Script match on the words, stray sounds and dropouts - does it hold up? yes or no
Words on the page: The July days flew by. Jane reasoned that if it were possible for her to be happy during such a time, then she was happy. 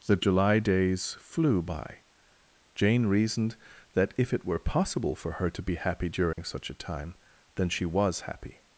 no